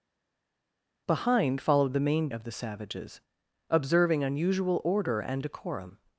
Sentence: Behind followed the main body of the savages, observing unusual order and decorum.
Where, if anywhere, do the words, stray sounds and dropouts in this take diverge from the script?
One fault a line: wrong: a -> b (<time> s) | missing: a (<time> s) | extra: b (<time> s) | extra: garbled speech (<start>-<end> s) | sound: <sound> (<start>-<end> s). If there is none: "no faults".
missing: body (2.3 s)